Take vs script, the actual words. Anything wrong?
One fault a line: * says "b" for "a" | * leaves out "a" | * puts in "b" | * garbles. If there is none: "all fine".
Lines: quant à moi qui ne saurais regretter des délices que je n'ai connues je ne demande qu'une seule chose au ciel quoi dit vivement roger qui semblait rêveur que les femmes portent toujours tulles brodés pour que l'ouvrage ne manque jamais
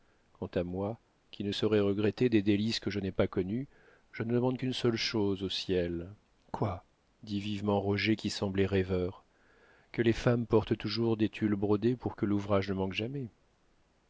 * puts in "pas"
* puts in "des"